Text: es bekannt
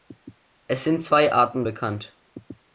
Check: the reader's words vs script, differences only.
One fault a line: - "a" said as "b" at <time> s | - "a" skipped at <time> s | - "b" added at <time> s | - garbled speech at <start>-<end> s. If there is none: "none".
- "sind zwei arten" added at 0.8 s